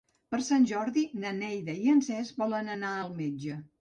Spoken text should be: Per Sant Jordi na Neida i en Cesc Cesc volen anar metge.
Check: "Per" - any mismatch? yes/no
no